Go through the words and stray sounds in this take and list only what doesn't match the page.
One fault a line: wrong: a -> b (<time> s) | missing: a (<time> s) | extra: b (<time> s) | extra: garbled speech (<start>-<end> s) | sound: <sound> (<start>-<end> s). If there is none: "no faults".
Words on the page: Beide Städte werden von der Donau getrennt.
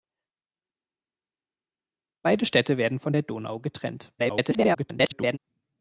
extra: garbled speech (4.2-5.4 s)